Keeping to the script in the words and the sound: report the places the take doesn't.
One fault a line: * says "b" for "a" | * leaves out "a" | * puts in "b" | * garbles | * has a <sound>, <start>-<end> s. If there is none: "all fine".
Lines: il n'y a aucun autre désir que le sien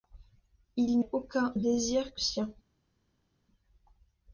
* leaves out "n'y"
* leaves out "autre"
* leaves out "le"